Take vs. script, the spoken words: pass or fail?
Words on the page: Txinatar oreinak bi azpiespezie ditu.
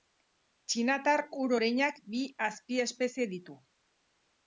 fail